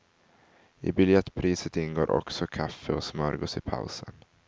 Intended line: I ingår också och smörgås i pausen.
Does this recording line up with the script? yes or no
no